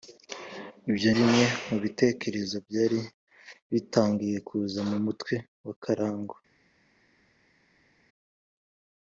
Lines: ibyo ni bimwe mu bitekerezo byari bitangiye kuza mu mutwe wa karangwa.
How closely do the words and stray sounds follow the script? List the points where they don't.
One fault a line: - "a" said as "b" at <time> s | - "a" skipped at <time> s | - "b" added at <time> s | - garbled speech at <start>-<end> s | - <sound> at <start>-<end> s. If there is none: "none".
- "ni" skipped at 1.1 s